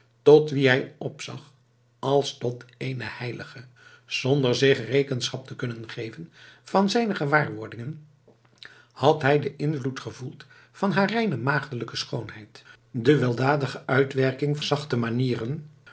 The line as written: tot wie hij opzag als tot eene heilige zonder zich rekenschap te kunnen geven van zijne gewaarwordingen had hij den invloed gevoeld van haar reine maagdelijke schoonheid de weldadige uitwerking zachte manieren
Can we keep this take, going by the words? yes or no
yes